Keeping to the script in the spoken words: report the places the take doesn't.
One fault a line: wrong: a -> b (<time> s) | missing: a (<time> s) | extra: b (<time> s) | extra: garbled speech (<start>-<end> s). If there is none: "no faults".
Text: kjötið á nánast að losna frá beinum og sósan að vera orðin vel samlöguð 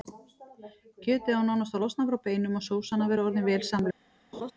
no faults